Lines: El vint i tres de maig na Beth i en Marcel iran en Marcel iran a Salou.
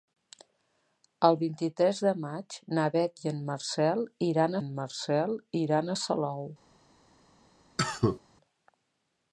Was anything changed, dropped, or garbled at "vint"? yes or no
no